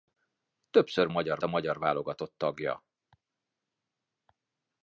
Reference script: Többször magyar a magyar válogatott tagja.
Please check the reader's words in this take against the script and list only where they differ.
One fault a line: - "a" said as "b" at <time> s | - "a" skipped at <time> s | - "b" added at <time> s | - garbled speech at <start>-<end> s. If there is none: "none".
none